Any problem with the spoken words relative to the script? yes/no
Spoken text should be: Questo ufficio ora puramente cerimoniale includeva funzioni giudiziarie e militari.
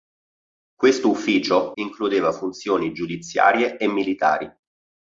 yes